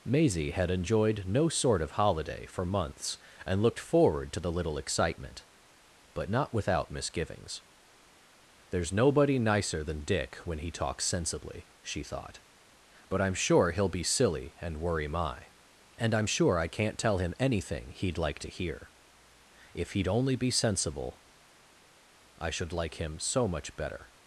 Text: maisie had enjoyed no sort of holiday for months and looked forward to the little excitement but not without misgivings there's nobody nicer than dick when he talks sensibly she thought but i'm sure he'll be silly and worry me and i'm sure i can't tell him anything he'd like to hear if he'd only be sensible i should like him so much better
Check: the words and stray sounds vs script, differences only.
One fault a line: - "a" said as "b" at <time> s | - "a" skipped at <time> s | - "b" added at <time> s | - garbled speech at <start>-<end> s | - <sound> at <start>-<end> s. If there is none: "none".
- "me" said as "my" at 15.1 s